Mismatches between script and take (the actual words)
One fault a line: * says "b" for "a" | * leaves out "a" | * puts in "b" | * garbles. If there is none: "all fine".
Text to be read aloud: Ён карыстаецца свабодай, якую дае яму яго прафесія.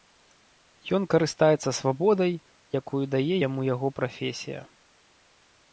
all fine